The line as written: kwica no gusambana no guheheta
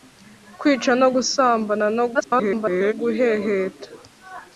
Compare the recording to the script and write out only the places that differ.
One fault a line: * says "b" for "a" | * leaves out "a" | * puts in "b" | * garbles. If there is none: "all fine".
* garbles